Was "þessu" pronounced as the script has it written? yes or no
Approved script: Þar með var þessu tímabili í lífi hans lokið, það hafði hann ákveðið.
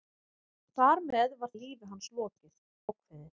no